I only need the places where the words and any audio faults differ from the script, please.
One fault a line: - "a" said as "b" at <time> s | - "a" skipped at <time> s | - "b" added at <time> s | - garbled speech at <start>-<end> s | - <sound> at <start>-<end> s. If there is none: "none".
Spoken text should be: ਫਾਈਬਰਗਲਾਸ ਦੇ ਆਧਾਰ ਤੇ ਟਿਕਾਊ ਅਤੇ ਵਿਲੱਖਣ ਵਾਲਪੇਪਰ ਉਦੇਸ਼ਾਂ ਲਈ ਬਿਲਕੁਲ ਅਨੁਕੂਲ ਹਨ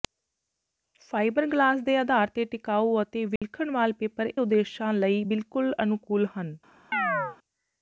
- dropout at 3.4-3.4 s
- chirp at 6.9-7.4 s